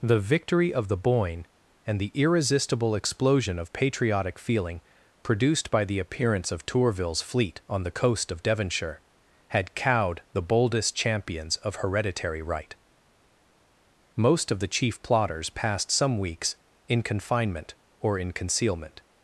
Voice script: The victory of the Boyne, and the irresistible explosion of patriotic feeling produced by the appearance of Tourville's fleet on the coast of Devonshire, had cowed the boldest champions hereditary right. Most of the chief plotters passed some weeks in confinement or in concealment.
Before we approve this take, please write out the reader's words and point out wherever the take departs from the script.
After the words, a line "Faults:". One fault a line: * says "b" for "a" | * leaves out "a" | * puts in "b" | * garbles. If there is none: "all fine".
The victory of the Boyne, and the irresistible explosion of patriotic feeling produced by the appearance of Tourville's fleet on the coast of Devonshire, had cowed the boldest champions of hereditary right. Most of the chief plotters passed some weeks in confinement or in concealment.
Faults:
* puts in "of"